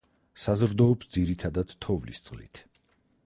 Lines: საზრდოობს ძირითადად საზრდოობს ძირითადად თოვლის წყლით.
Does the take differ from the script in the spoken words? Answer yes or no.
yes